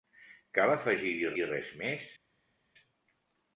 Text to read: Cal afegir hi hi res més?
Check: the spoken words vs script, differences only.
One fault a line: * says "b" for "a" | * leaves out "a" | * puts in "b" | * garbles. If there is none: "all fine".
all fine